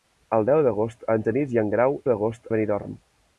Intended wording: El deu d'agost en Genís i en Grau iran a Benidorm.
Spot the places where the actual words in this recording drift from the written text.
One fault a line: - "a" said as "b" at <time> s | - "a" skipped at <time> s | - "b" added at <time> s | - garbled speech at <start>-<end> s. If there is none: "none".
- "iran" said as "d'agost" at 2.1 s